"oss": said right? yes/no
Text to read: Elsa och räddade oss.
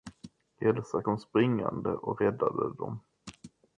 no